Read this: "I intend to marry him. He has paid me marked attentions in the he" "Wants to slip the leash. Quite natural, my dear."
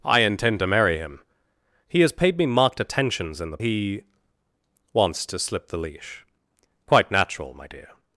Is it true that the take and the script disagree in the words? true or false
false